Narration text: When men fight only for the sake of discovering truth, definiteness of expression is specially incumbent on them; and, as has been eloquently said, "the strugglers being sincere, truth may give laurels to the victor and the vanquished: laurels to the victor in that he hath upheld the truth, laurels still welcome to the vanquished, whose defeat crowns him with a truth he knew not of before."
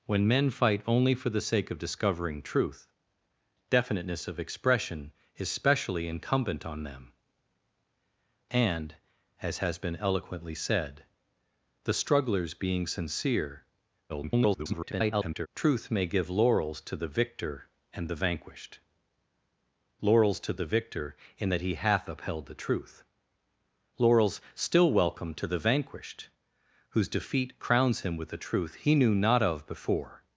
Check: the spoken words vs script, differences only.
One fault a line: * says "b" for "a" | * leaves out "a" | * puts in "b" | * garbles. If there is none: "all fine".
* garbles